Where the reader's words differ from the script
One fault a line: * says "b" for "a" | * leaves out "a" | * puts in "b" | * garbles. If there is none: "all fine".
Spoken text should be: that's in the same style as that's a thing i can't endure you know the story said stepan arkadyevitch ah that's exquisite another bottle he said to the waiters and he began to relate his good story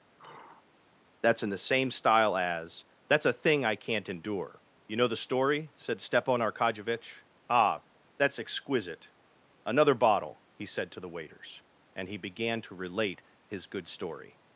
all fine